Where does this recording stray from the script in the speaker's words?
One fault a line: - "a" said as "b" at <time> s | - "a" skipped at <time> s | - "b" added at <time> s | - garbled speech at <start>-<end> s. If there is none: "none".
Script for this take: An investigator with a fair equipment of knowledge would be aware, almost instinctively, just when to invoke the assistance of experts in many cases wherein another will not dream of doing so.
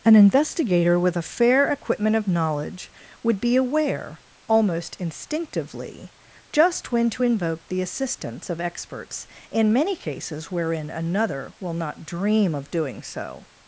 none